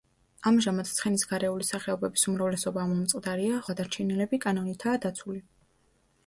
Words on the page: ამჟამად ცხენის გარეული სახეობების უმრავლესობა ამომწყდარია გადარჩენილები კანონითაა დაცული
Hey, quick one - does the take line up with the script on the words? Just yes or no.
yes